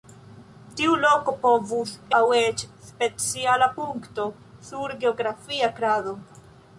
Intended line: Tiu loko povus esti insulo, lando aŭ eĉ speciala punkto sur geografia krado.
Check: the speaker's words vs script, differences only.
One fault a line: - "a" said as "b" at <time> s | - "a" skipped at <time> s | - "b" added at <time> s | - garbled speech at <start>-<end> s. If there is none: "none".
- "esti insulo lando" skipped at 1.9 s